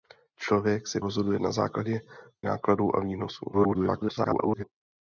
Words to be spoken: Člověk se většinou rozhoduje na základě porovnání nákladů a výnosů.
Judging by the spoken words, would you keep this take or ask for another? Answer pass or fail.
fail